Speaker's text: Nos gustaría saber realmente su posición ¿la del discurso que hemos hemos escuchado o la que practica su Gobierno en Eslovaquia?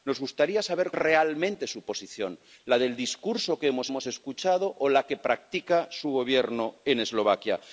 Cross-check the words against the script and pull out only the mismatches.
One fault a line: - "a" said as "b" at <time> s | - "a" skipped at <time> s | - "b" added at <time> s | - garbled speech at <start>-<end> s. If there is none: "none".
none